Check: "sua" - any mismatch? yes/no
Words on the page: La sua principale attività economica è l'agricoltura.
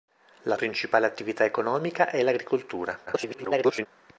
yes